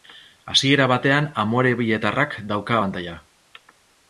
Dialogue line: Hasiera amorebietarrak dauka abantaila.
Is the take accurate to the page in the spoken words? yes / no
no